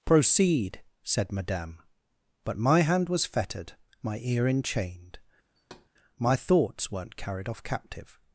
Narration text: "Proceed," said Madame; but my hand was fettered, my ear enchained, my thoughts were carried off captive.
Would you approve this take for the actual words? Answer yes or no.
no